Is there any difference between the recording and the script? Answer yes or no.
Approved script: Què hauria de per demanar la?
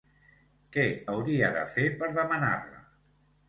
yes